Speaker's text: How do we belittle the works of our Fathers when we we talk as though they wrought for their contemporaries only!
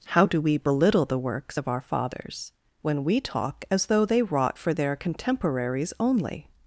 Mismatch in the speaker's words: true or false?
true